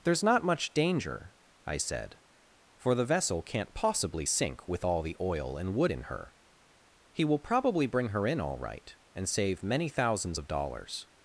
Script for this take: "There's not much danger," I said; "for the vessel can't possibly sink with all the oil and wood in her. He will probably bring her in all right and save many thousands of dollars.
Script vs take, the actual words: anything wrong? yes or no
no